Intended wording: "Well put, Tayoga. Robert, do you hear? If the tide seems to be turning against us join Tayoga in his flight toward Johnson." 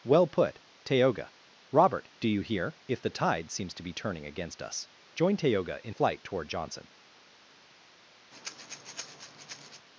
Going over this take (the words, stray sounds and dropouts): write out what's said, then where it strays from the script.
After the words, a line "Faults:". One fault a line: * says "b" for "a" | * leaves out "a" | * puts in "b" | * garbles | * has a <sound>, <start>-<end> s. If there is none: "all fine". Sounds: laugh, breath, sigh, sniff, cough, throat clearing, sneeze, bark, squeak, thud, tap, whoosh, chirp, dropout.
"Well put, Tayoga. Robert, do you hear? If the tide seems to be turning against us join Tayoga in flight toward Johnson."
Faults:
* leaves out "his"
* has a breath, 8.3-9.9 s